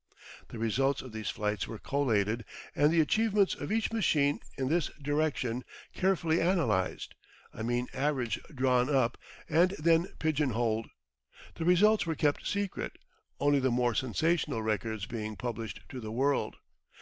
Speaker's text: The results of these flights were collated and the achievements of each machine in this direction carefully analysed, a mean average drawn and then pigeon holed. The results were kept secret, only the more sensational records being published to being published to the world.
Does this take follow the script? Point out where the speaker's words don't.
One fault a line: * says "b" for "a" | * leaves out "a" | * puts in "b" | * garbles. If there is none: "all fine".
* puts in "up"
* leaves out "being published to"